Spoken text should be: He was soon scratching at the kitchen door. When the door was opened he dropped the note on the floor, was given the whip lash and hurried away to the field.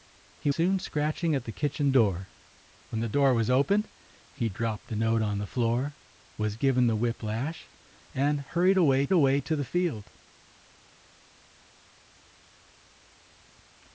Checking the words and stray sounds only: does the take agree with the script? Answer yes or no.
no